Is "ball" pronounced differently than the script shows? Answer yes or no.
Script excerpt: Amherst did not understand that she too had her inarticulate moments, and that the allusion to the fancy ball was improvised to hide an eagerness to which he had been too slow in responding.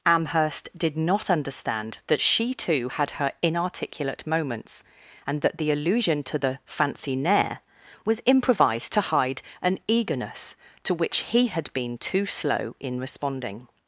yes